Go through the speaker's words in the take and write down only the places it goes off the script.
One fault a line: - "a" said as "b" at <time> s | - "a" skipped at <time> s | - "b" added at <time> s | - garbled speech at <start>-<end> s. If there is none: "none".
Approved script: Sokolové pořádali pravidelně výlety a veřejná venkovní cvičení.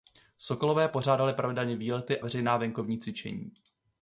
- "a" skipped at 2.2 s